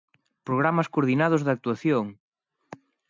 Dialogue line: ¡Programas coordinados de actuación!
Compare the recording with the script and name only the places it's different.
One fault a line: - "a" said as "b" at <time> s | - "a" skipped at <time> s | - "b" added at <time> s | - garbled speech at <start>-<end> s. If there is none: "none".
none